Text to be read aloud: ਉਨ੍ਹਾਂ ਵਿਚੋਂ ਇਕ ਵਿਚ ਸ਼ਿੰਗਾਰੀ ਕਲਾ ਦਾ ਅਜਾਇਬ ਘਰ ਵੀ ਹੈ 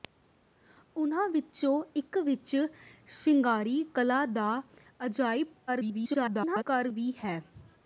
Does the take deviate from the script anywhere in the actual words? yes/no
yes